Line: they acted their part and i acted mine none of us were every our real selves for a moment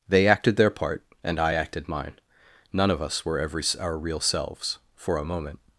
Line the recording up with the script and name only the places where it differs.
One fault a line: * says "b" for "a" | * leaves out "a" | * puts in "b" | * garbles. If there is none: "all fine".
all fine